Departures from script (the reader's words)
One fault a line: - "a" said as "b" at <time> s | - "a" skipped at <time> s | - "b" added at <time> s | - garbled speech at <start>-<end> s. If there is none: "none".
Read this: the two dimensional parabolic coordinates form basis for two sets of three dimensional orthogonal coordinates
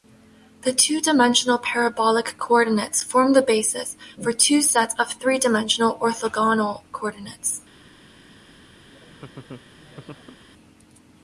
- "the" added at 3.3 s